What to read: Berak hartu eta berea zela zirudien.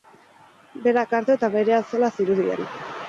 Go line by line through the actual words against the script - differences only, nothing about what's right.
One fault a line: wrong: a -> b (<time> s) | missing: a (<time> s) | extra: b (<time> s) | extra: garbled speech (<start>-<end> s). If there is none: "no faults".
no faults